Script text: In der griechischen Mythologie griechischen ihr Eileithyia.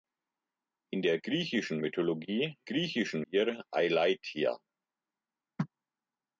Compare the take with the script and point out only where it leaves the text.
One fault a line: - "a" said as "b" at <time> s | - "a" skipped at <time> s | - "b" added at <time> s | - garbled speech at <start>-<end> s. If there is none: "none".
none